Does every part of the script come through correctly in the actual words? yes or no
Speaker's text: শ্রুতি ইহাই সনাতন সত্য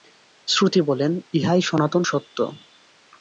no